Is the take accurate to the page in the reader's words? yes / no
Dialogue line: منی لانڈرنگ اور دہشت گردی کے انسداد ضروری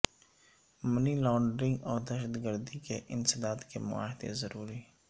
no